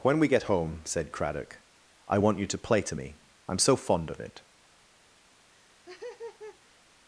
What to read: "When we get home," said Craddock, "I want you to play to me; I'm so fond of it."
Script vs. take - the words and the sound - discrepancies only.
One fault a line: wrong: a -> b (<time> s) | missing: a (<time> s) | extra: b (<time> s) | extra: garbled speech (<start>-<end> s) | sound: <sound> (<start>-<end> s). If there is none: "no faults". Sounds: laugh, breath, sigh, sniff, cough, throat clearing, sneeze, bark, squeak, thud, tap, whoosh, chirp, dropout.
sound: laugh (5.5-6.8 s)